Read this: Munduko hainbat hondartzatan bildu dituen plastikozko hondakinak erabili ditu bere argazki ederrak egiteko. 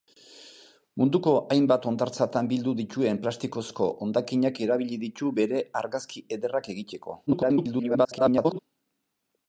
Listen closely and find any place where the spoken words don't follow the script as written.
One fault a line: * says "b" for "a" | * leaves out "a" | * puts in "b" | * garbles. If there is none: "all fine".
* garbles